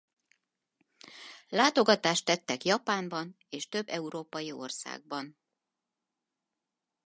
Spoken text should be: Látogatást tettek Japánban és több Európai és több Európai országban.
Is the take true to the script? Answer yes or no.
no